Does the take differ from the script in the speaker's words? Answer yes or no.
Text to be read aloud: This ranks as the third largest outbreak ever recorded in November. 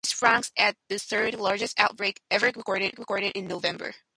yes